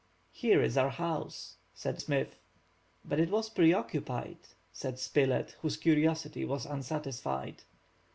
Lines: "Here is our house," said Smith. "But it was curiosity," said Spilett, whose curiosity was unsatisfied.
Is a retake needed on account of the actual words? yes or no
yes